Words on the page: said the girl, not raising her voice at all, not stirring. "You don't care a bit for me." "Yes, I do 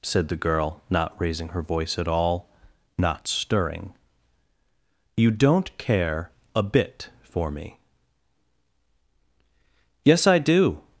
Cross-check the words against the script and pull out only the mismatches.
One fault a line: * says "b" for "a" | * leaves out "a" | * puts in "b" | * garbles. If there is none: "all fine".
all fine